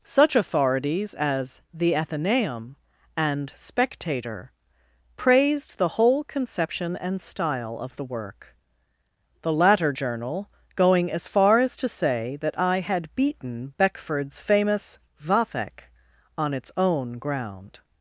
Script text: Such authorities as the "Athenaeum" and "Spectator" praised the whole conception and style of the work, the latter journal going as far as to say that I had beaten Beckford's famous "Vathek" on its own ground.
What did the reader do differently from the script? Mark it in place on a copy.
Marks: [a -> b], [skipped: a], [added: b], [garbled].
Such authorities as the "Athenaeum" and "Spectator" praised the whole conception and style of the work, the latter journal going as far as to say that I had beaten Beckford's famous "Vathek" on its own ground.